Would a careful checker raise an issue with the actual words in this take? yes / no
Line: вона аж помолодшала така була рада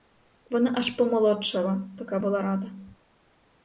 no